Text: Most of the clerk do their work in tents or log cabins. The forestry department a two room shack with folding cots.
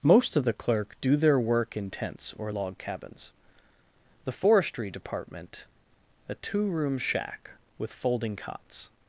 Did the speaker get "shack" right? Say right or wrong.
right